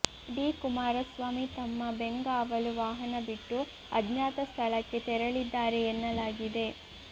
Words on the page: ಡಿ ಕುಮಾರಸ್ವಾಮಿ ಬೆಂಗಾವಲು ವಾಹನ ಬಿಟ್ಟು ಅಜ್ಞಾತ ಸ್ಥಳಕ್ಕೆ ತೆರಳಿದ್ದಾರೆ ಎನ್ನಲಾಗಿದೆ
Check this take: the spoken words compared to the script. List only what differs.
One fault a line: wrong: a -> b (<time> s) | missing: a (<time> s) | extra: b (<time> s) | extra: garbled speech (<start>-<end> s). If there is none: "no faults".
extra: ತಮ್ಮ (1.5 s)